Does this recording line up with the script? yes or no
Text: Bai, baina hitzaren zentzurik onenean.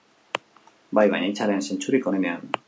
yes